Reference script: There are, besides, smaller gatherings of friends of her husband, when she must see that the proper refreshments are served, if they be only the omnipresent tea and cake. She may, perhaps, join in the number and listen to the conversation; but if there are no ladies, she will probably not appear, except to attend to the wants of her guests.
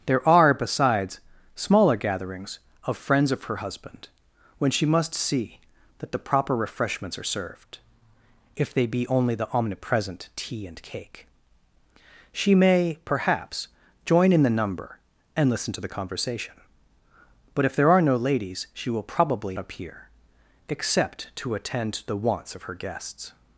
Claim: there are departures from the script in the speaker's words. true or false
true